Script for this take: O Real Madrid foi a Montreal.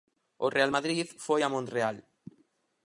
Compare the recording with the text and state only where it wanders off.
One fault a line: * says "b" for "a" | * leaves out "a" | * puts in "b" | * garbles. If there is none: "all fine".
all fine